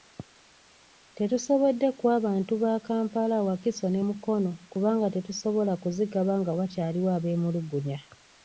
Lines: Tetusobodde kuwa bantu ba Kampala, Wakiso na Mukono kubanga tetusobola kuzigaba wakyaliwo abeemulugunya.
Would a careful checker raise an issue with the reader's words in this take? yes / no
yes